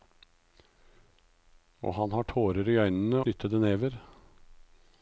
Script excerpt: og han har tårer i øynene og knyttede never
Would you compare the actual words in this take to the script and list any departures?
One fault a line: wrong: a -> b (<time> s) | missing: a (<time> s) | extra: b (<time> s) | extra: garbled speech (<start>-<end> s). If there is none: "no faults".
missing: og (3.2 s)